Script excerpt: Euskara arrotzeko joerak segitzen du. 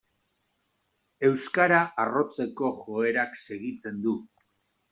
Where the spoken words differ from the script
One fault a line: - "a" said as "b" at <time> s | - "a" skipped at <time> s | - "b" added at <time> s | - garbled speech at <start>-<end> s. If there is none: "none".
none